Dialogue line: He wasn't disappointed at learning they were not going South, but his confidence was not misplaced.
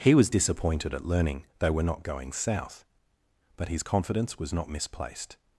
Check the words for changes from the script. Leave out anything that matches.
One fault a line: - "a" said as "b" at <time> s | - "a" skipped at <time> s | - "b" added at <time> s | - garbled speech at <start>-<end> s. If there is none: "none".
- "wasn't" said as "was" at 0.1 s